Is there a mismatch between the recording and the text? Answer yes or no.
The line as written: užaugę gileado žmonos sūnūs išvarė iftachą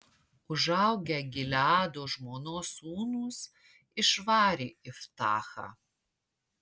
no